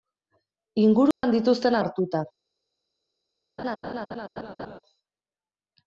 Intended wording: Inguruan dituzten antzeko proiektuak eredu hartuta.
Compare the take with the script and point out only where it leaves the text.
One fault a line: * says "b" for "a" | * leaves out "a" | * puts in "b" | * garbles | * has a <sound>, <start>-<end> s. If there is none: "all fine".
* has a dropout, 1.1-1.2 s
* leaves out "antzeko proiektuak eredu"
* has a laugh, 3.6-4.8 s